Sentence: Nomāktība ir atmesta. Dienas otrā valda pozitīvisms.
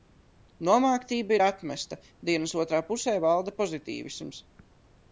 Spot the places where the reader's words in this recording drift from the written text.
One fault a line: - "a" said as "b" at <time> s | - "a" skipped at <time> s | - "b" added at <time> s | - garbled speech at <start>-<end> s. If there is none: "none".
- "pusē" added at 2.9 s